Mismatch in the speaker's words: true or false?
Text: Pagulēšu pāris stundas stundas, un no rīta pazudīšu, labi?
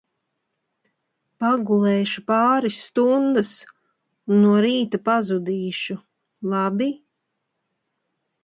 true